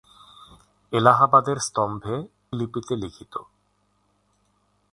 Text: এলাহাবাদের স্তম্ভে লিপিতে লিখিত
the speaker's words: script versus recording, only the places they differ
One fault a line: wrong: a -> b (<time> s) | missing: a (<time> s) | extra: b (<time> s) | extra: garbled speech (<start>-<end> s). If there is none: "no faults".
no faults